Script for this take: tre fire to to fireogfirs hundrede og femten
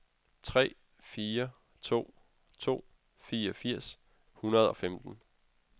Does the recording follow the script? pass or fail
pass